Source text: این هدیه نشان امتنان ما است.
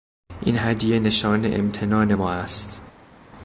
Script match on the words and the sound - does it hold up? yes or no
yes